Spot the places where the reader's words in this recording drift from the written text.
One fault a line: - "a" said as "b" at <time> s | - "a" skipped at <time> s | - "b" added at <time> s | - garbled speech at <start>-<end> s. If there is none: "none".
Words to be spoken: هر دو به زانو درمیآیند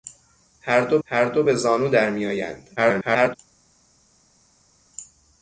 - "هر دو" added at 1.0 s
- garbled speech at 2.8-3.4 s